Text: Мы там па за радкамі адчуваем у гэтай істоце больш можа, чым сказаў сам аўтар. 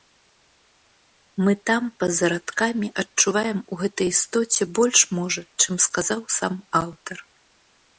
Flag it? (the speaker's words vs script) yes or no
no